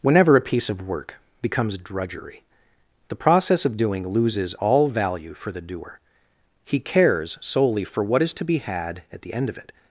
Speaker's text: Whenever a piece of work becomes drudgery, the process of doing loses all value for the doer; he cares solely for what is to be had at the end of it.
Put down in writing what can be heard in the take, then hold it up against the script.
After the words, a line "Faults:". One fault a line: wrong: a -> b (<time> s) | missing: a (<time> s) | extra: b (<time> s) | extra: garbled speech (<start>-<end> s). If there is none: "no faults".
Whenever a piece of work becomes drudgery, the process of doing loses all value for the doer; he cares solely for what is to be had at the end of it.
Faults:
no faults